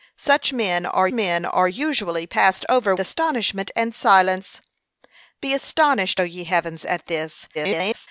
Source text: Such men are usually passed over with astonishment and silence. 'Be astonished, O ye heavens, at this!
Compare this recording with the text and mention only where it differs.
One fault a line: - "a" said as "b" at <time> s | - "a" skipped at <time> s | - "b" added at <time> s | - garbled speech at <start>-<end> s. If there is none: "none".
- "men are" added at 1.1 s
- "with" skipped at 2.9 s
- garbled speech at 7.5-8.1 s